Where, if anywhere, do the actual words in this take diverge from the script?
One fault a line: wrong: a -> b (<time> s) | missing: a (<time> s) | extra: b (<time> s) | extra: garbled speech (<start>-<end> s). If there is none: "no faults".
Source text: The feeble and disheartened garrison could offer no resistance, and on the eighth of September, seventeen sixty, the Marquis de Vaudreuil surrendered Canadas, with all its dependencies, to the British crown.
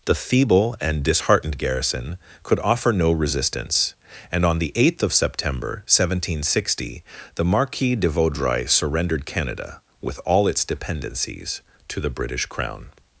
wrong: Canadas -> Canada (9.3 s)